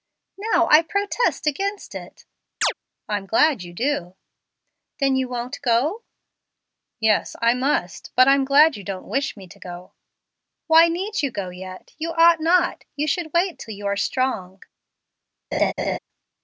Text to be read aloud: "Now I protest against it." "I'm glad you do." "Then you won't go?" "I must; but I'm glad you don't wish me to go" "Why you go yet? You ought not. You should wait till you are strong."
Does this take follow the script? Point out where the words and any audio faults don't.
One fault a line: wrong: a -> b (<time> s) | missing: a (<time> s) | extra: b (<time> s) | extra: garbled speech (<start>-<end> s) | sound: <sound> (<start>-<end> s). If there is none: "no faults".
sound: chirp (2.6-2.7 s)
extra: Yes (7.0 s)
extra: need (10.9 s)
sound: laugh (15.5-16.0 s)